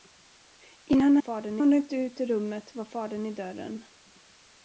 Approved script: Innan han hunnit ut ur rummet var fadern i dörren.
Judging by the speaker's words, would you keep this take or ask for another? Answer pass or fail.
fail